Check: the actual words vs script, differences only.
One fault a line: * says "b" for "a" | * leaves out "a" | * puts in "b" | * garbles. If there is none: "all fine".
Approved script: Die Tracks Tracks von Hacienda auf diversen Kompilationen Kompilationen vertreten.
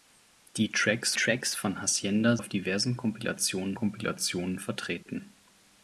all fine